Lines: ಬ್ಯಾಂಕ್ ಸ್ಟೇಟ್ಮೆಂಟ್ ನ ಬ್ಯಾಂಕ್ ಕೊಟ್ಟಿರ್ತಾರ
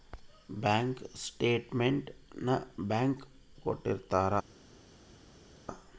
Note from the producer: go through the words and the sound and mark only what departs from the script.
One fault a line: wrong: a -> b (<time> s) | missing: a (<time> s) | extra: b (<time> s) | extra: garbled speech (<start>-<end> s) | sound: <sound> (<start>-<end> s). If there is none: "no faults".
no faults